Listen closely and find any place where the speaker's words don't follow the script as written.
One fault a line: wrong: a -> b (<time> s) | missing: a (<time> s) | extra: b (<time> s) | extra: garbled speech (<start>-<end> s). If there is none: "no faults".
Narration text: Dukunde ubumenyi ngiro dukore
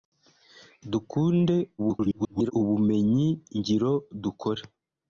extra: garbled speech (1.8-2.5 s)